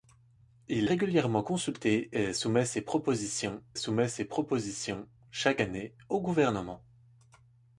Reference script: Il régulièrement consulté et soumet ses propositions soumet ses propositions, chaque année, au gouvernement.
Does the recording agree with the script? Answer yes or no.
yes